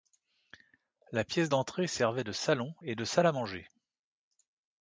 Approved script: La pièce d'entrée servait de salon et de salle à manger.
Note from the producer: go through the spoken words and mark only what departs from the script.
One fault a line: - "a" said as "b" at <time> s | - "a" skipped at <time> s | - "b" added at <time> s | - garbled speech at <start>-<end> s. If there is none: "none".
none